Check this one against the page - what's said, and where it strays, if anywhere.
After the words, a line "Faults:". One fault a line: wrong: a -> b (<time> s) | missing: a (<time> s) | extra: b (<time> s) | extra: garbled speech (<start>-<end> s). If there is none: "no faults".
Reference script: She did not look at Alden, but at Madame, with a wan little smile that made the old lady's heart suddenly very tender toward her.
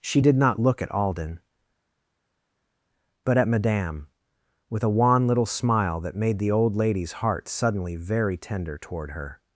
She did not look at Alden, but at Madame, with a wan little smile that made the old lady's heart suddenly very tender toward her.
Faults:
no faults